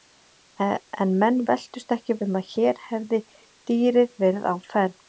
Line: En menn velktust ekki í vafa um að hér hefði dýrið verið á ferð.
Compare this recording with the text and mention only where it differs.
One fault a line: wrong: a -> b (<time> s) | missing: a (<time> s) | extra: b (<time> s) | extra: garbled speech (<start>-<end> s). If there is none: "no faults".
missing: vafa (2.2 s)